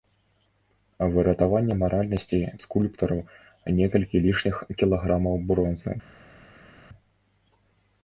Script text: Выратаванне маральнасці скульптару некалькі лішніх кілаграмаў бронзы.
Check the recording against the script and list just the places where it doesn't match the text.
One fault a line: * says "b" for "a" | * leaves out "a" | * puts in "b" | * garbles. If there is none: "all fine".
all fine